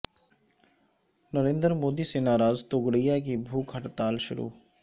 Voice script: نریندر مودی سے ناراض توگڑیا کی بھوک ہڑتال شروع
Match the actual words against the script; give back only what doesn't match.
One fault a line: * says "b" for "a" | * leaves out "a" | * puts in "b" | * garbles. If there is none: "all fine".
all fine